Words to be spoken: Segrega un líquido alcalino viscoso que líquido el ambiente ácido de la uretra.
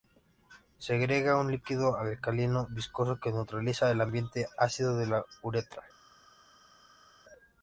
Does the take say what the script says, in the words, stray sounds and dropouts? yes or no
no